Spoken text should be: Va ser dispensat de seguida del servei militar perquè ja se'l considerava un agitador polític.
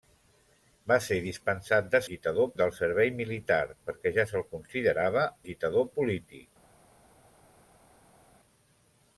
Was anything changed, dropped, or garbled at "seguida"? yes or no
yes